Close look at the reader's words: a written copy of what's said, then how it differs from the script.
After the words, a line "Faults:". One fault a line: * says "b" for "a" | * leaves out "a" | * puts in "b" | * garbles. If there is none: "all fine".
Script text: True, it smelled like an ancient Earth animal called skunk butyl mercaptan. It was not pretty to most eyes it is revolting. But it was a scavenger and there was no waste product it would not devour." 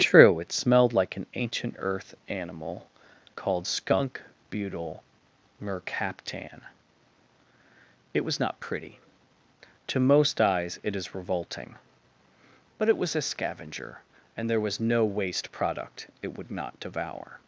True, it smelled like an ancient Earth animal called skunk butyl mercaptan. It was not pretty to most eyes it is revolting. But it was a scavenger and there was no waste product it would not devour."
Faults:
all fine